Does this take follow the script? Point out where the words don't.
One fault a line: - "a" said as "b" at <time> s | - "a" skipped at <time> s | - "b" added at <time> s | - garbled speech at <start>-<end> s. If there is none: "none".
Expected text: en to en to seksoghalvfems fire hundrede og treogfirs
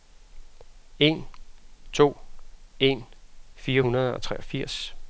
- "to seksoghalvfems" skipped at 3.0 s